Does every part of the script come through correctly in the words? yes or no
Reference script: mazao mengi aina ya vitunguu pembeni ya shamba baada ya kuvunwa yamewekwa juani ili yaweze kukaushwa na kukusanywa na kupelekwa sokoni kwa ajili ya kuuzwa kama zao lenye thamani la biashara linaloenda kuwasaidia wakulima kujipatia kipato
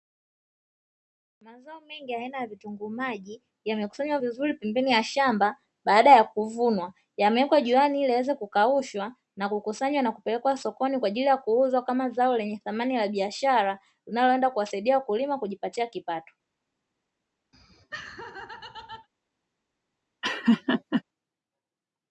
no